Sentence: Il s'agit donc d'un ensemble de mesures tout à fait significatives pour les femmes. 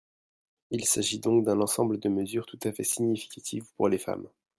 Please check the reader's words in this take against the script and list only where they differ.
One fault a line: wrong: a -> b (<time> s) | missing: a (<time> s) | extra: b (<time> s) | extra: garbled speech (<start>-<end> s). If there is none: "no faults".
no faults